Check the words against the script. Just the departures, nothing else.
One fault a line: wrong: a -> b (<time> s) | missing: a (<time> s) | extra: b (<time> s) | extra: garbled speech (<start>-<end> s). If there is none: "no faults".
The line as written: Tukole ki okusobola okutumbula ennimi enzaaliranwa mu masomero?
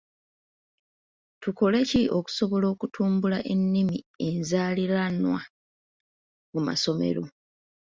no faults